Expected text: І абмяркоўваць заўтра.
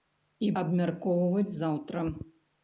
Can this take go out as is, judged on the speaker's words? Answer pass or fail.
pass